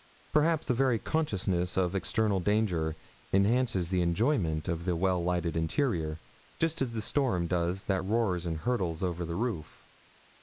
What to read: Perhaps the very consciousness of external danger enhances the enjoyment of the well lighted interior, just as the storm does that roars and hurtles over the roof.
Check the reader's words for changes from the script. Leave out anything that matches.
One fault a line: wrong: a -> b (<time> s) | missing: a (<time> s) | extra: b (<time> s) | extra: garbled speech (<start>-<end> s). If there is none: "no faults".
no faults